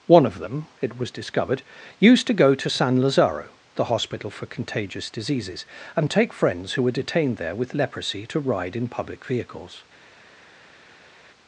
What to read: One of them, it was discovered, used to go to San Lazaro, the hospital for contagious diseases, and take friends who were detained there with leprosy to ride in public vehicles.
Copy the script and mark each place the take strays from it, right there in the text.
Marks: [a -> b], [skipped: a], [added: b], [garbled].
One of them, it was discovered, used to go to San Lazaro, the hospital for contagious diseases, and take friends who were detained there with leprosy to ride in public vehicles.